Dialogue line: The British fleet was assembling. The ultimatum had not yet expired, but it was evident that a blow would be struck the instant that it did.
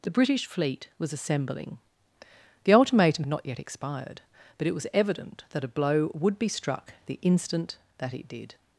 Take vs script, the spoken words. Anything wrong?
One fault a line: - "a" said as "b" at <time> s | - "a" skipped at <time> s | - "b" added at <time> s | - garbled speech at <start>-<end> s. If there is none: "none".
- "had" skipped at 3.2 s